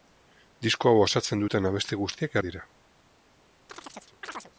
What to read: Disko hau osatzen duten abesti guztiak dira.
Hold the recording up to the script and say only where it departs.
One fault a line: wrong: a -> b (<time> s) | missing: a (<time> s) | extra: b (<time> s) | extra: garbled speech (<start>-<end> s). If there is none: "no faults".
no faults